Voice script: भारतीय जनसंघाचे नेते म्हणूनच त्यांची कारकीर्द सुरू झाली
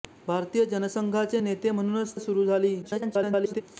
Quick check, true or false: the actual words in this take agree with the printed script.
false